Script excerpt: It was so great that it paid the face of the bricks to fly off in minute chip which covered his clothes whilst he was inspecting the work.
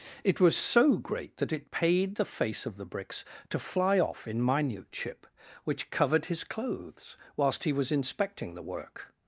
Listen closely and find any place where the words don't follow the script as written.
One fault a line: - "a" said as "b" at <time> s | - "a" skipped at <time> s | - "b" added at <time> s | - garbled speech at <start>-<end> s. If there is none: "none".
none